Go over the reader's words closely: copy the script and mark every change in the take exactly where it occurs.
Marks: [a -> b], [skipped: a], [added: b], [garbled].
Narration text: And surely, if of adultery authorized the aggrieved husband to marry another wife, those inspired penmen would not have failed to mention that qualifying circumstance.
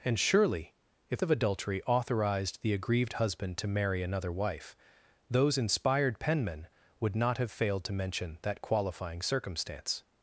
And surely, if of adultery authorized the aggrieved husband to marry another wife, those inspired penmen would not have failed to mention that qualifying circumstance.